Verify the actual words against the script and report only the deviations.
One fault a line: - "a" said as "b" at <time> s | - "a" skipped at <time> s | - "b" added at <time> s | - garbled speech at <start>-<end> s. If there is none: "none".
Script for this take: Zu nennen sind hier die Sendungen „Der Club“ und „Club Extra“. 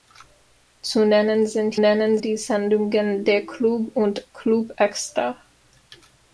- "hier" said as "nennen" at 1.8 s